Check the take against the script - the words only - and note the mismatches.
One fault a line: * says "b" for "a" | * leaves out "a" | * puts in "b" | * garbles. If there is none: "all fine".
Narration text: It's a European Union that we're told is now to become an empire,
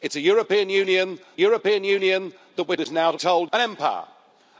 * puts in "European Union"
* leaves out "told"
* says "told" for "become"